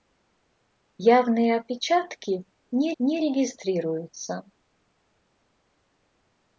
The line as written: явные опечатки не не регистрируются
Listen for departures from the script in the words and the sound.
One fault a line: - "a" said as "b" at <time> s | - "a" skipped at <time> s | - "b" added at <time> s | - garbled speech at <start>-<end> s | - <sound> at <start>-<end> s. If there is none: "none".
none